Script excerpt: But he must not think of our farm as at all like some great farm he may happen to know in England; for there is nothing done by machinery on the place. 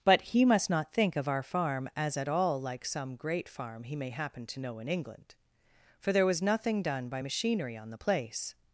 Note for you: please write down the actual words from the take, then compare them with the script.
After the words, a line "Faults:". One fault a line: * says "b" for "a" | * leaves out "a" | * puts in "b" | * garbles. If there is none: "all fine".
But he must not think of our farm as at all like some great farm he may happen to know in England; for there was nothing done by machinery on the place.
Faults:
* says "was" for "is"